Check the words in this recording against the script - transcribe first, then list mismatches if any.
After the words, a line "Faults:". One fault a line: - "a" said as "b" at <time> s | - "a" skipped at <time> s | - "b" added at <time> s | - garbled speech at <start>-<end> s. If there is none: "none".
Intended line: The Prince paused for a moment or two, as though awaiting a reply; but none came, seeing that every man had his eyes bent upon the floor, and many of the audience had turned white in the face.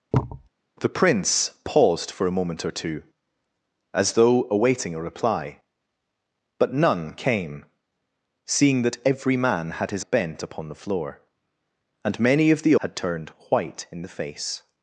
The Prince paused for a moment or two, as though awaiting a reply; but none came, seeing that every man had his bent upon the floor, and many of the had turned white in the face.
Faults:
- "eyes" skipped at 10.0 s
- "audience" skipped at 12.8 s